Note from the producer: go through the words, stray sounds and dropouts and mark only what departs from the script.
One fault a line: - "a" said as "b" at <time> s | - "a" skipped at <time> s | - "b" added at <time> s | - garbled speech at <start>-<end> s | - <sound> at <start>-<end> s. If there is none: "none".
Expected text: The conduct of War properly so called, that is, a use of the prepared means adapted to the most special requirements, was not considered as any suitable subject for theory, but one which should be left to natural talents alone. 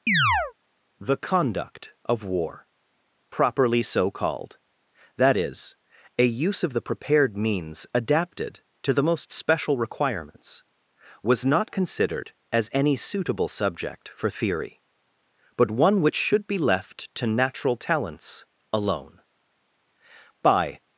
- chirp at 0.1-0.5 s
- "By" added at 20.4 s